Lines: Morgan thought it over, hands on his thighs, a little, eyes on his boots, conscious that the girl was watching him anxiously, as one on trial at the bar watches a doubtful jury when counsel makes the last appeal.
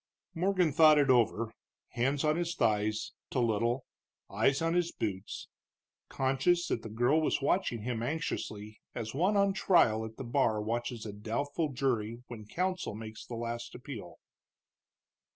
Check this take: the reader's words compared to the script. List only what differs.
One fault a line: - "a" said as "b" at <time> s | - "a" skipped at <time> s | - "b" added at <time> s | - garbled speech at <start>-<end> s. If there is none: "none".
none